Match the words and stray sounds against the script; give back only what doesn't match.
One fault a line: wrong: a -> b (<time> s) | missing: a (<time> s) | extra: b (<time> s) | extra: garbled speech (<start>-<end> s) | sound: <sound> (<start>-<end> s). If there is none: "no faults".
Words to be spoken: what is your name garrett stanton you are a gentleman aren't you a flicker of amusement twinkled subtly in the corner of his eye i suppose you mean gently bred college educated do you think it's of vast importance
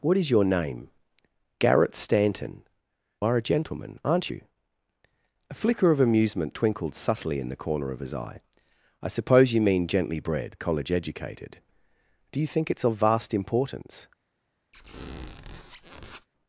missing: you (2.6 s)
sound: squeak (14.7-16.3 s)